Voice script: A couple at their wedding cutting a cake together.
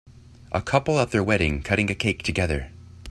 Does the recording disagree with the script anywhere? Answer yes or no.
no